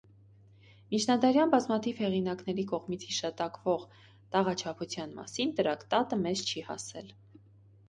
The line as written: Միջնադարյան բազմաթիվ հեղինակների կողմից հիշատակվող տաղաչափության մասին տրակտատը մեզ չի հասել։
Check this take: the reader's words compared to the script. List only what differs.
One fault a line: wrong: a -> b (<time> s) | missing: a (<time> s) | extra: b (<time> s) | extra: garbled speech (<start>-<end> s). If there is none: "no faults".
no faults